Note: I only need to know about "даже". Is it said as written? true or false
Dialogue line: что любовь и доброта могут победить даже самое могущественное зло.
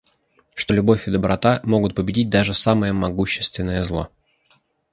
true